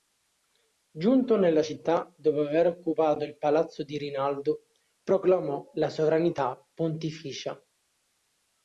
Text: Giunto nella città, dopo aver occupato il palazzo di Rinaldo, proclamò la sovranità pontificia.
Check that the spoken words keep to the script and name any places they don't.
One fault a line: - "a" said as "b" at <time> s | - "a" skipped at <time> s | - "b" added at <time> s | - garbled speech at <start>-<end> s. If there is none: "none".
none